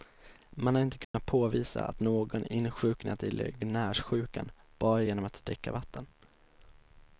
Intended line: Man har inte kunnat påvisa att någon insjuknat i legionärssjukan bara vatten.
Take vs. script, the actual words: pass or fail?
fail